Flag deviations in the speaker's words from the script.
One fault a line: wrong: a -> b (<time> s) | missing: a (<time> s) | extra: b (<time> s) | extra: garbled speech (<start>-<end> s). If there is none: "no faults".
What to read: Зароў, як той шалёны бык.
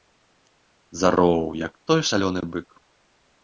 no faults